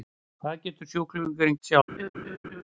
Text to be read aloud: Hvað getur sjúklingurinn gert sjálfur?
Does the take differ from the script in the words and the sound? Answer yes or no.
yes